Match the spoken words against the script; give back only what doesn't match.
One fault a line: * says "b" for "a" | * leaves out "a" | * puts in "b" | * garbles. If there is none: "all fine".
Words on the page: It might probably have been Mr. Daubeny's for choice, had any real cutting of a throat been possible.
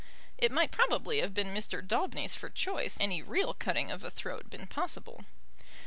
* leaves out "had"